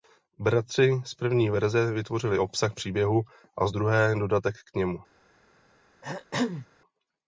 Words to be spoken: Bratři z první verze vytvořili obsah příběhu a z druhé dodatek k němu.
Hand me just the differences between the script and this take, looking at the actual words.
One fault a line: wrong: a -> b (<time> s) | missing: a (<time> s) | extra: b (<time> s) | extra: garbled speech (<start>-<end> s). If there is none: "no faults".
no faults